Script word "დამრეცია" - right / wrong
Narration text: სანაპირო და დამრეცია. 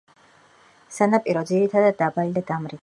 right